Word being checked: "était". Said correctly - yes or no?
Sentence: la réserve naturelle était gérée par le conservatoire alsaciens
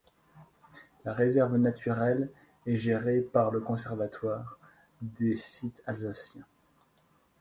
no